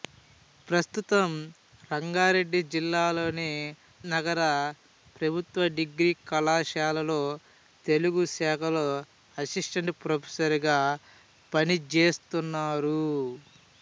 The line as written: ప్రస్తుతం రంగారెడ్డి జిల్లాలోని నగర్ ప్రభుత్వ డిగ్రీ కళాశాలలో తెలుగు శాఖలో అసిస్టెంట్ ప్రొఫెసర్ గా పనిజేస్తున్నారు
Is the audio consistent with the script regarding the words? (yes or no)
yes